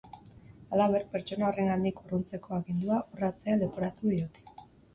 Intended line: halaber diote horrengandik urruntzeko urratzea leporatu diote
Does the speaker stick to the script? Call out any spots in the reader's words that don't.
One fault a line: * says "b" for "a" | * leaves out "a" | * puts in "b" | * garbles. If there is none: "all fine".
* says "pertsona" for "diote"
* puts in "agindua"